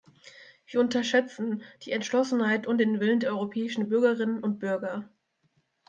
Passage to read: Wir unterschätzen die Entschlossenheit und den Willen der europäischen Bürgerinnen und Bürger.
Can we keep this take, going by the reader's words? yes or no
yes